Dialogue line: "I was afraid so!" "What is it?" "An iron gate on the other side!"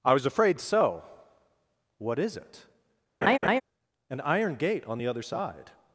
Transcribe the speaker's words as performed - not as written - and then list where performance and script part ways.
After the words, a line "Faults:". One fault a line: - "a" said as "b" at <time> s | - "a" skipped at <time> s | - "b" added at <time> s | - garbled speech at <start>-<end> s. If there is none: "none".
"I was afraid so!" "What is it?" "An iron gate on the other side!"
Faults:
none